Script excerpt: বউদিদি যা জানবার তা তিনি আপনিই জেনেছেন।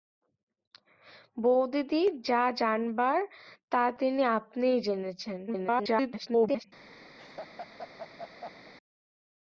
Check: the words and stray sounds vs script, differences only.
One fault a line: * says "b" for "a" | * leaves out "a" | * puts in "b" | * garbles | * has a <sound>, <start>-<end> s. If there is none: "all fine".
* garbles
* has a laugh, 7.2-8.7 s